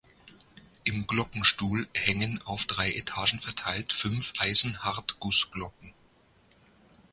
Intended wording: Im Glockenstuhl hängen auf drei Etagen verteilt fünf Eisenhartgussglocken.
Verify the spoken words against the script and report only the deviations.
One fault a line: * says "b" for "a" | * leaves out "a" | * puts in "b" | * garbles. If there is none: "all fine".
all fine